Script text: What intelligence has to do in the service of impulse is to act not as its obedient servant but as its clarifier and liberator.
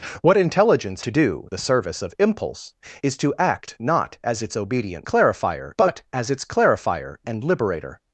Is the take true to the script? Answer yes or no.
no